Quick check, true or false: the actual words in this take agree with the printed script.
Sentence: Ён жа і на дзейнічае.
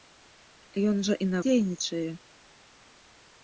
true